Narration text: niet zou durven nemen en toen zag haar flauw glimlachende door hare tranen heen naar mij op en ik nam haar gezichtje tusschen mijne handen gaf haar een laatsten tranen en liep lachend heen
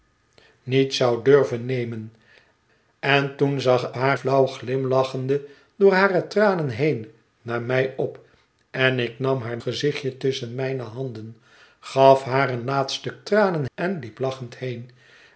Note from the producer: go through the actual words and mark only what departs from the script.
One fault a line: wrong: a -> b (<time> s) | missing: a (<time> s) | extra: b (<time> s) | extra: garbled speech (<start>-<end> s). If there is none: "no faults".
no faults